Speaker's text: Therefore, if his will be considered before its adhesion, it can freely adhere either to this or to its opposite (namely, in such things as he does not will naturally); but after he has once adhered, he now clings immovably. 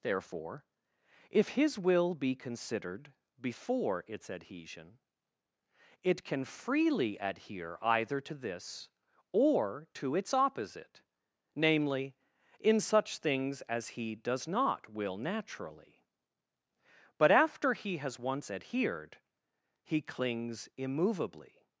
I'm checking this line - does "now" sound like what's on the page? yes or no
no